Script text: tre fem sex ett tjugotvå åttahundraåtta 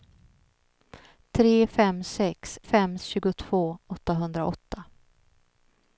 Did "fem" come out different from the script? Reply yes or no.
no